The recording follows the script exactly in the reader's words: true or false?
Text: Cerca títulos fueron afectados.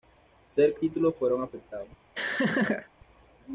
true